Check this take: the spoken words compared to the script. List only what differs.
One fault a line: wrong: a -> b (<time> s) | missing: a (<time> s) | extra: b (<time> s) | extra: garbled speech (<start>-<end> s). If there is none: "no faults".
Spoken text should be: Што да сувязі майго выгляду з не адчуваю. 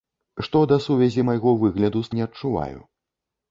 no faults